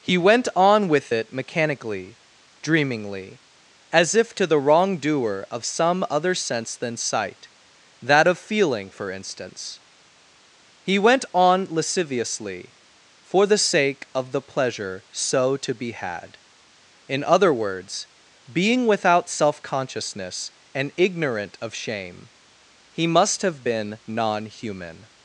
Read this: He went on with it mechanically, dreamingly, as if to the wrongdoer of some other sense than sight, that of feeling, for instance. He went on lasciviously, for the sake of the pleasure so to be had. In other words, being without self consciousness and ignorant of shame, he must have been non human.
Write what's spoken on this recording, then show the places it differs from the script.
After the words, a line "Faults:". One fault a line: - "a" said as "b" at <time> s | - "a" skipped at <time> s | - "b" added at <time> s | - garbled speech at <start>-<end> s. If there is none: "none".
He went on with it mechanically, dreamingly, as if to the wrongdoer of some other sense than sight, that of feeling, for instance. He went on lasciviously, for the sake of the pleasure so to be had. In other words, being without self consciousness and ignorant of shame, he must have been non human.
Faults:
none